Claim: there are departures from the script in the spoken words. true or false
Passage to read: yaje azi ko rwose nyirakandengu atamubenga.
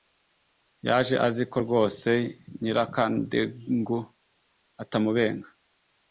false